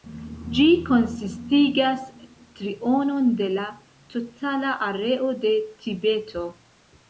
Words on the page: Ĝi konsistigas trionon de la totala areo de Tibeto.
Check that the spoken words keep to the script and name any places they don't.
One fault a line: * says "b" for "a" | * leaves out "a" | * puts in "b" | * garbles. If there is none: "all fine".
all fine